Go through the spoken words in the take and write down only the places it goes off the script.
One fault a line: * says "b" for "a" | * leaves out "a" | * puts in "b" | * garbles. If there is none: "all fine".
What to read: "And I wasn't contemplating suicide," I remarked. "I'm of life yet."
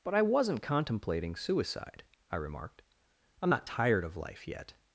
* says "But" for "And"
* puts in "not tired"